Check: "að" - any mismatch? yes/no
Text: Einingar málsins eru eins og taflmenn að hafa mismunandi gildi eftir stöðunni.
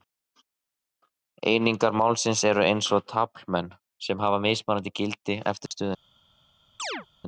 yes